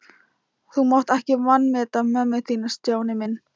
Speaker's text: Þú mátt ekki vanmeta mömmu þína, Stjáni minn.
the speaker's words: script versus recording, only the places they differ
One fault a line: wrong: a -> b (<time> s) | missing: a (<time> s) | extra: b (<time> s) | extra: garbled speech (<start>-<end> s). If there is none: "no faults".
no faults